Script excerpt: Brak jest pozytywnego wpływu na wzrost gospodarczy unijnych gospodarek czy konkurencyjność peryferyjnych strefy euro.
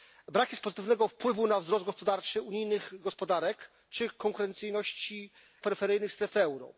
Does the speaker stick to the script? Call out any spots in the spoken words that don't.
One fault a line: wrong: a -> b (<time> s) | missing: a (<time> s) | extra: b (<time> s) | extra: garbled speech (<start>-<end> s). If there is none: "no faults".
no faults